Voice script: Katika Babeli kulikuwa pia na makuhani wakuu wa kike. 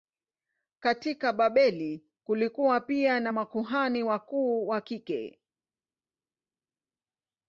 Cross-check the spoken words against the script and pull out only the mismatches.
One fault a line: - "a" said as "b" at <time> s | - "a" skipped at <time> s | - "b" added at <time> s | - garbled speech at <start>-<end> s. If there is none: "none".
none